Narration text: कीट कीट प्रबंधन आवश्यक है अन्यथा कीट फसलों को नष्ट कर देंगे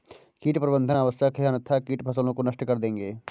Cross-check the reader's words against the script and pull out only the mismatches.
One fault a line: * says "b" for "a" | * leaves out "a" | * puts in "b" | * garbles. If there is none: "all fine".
* leaves out "कीट"